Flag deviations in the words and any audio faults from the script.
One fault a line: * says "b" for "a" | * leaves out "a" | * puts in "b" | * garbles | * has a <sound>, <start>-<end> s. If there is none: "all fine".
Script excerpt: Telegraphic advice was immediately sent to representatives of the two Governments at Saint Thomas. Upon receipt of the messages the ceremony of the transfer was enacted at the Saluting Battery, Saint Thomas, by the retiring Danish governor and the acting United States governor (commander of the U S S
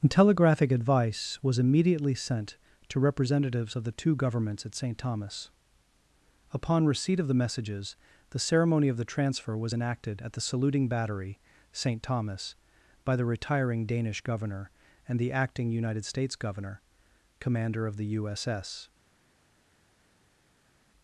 all fine